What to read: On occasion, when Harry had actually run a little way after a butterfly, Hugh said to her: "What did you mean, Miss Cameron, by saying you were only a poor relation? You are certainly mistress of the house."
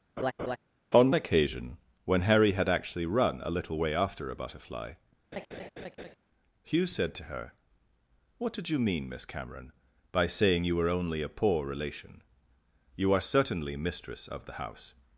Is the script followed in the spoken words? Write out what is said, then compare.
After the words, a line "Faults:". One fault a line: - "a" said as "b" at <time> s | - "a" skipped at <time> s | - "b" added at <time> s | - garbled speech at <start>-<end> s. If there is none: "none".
On occasion, when Harry had actually run a little way after a butterfly, Hugh said to her: "What did you mean, Miss Cameron, by saying you were only a poor relation? You are certainly mistress of the house."
Faults:
none